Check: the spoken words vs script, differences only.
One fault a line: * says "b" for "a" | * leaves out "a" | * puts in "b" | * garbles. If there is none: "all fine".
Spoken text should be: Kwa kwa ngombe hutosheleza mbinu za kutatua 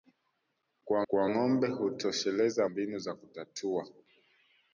all fine